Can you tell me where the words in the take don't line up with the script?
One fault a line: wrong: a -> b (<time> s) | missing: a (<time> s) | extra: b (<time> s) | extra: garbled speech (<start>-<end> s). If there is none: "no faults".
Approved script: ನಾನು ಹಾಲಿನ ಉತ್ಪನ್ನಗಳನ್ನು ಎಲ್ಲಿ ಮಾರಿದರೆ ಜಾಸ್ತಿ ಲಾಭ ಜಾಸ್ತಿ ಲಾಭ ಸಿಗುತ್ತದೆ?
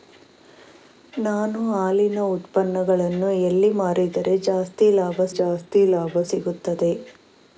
no faults